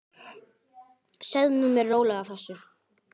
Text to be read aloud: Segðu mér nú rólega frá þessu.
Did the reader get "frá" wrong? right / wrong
wrong